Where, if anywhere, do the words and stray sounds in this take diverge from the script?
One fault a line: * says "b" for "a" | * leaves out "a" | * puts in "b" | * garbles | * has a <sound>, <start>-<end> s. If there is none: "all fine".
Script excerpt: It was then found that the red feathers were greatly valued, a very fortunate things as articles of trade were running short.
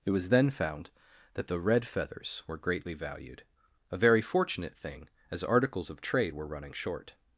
* says "thing" for "things"